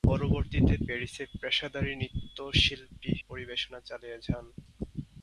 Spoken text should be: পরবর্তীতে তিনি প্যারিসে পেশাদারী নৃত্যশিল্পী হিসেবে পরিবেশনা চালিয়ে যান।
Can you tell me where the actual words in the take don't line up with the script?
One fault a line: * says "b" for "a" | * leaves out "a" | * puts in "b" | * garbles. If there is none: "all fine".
* leaves out "তিনি"
* leaves out "হিসেবে"